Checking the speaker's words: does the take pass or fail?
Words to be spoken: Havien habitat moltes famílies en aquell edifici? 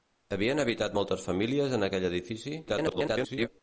fail